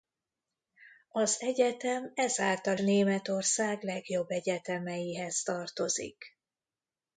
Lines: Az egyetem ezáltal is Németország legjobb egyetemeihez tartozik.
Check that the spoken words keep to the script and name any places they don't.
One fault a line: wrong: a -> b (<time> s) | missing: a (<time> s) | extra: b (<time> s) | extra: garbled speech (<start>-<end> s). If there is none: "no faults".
missing: is (2.8 s)